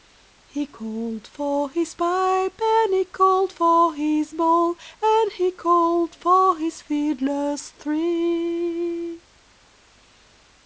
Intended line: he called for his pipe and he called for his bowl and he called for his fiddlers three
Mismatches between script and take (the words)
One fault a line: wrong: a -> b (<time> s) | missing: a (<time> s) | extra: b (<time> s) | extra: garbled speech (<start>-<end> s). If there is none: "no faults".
no faults